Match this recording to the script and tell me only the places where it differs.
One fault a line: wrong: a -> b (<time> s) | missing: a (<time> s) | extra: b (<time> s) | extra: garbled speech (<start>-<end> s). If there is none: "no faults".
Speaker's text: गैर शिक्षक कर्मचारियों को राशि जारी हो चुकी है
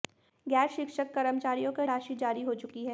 no faults